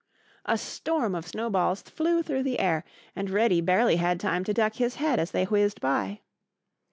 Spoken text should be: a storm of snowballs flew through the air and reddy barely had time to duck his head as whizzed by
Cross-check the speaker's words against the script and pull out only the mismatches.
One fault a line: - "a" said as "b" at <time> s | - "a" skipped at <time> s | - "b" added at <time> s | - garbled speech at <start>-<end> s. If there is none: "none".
- "they" added at 5.3 s